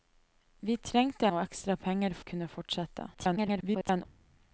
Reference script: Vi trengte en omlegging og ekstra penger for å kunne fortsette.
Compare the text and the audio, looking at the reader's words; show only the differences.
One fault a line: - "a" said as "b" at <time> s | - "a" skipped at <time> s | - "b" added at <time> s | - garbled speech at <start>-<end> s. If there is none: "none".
- "en omlegging" skipped at 1.3 s
- "for" skipped at 2.2 s
- garbled speech at 3.1-4.1 s